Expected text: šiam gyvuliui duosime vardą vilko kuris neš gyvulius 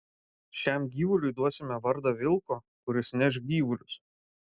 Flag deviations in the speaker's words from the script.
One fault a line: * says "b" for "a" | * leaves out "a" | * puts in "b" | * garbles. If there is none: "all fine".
all fine